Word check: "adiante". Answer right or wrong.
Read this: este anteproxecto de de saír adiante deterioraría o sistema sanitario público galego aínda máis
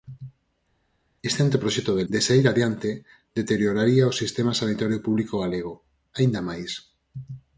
right